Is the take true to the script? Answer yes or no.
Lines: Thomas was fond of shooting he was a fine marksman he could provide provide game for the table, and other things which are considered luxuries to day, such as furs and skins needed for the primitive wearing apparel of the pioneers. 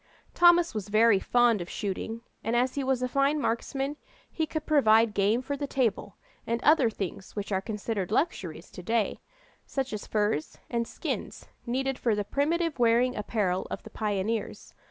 no